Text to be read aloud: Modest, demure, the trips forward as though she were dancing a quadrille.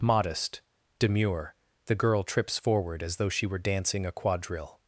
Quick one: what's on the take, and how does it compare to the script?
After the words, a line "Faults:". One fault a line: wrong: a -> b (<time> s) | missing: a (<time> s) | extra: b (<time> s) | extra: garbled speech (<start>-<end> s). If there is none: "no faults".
Modest, demure, the girl trips forward as though she were dancing a quadrille.
Faults:
extra: girl (1.9 s)